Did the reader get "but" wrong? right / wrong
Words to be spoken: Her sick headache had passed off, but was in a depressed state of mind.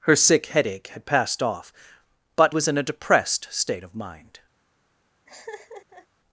right